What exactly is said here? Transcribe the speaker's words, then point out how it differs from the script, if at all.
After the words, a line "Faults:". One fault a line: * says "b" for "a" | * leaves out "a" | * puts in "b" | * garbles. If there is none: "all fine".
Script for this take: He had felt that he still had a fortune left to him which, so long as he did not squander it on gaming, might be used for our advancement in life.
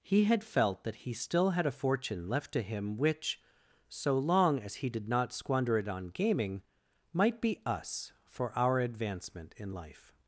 He had felt that he still had a fortune left to him which, so long as he did not squander it on gaming, might be us for our advancement in life.
Faults:
* says "us" for "used"